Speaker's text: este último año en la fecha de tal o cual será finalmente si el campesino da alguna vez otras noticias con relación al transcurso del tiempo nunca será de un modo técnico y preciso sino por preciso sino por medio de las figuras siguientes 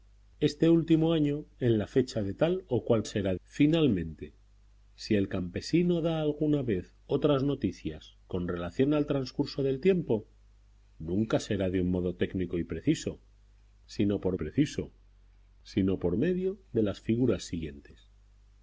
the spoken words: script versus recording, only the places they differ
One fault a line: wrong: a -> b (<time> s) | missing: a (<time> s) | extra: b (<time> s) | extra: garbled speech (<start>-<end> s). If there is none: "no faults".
no faults